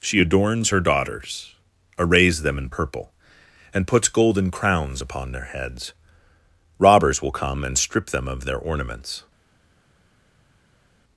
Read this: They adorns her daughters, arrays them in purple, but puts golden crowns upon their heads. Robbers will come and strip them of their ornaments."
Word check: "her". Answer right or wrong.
right